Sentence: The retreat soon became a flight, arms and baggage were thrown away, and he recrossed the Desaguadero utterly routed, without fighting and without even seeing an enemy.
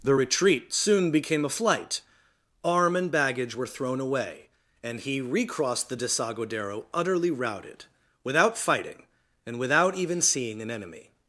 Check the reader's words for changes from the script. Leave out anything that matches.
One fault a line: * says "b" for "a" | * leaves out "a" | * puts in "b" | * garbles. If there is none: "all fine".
* says "arm" for "arms"